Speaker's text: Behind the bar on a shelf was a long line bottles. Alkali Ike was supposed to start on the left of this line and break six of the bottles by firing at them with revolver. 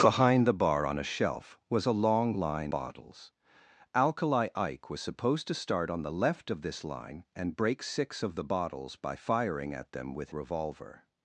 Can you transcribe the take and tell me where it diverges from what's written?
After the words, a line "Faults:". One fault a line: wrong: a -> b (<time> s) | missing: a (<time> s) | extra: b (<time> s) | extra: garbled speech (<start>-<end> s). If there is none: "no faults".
Behind the bar on a shelf was a long line bottles. Alkali Ike was supposed to start on the left of this line and break six of the bottles by firing at them with revolver.
Faults:
no faults